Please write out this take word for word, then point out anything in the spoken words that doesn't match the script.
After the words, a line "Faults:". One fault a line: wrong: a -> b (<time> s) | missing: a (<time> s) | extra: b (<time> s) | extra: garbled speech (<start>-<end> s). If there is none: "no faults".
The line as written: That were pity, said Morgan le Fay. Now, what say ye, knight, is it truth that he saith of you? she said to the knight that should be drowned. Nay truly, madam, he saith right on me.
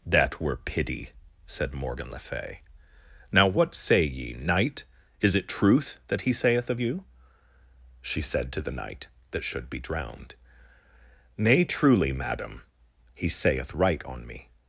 That were pity, said Morgan le Fay. Now, what say ye, knight, is it truth that he saith of you? she said to the knight that should be drowned. Nay truly, madam, he saith right on me.
Faults:
no faults